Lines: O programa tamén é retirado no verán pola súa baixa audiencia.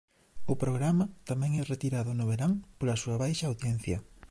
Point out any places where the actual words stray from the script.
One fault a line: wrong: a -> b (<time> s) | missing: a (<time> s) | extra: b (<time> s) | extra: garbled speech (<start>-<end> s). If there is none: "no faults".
no faults